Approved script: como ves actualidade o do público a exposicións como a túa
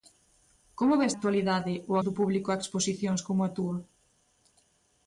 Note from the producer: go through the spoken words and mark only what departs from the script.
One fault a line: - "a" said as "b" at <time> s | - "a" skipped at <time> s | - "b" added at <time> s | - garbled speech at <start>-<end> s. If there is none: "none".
none